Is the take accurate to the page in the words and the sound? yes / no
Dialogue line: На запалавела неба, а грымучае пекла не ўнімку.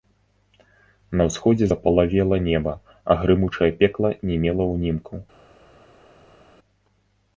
no